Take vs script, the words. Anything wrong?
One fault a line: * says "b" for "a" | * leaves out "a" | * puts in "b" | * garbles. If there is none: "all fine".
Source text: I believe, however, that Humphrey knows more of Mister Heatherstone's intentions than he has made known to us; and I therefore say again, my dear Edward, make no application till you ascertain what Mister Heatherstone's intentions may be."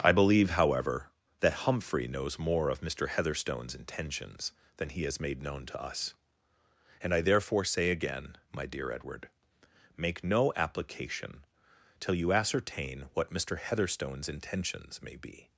all fine